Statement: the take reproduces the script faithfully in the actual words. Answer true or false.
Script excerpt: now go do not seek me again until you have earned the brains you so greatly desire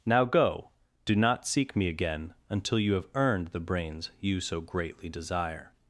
true